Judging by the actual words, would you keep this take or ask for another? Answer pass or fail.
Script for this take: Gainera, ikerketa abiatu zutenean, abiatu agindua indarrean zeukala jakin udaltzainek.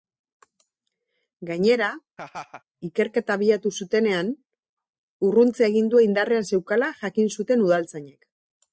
fail